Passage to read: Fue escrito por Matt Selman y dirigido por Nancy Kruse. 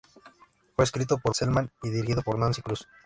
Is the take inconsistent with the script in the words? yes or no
yes